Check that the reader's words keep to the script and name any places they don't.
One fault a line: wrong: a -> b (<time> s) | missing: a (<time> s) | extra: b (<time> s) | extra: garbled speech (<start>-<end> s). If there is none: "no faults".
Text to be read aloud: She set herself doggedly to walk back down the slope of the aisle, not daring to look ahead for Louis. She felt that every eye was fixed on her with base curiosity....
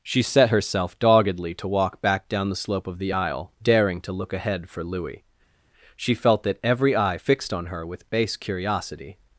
missing: not (3.5 s)
missing: was (7.2 s)